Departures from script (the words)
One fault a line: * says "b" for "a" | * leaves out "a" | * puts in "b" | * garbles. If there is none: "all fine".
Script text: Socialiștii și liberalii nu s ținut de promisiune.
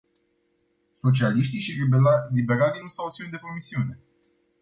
* puts in "au"